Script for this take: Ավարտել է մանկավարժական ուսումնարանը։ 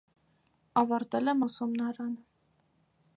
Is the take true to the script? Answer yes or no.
no